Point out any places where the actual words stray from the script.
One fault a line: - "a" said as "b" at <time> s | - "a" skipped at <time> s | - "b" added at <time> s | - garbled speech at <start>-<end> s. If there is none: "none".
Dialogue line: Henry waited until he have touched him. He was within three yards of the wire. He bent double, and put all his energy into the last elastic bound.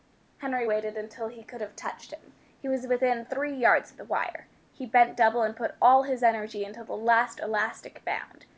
- "could" added at 1.4 s